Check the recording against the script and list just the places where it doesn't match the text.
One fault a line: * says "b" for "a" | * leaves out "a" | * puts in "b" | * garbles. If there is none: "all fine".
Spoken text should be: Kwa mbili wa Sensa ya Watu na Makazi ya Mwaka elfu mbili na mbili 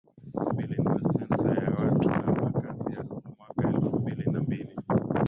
all fine